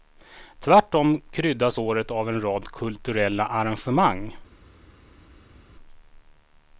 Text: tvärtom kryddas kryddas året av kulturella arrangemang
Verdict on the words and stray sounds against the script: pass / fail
fail